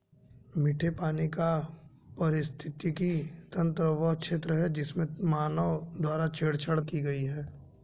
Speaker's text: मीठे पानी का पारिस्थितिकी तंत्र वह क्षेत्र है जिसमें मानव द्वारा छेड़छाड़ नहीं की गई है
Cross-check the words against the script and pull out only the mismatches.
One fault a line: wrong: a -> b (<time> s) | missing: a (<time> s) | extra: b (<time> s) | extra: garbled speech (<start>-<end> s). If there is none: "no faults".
missing: नहीं (6.8 s)